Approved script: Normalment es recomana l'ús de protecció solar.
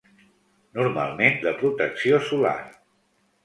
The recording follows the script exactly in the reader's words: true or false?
false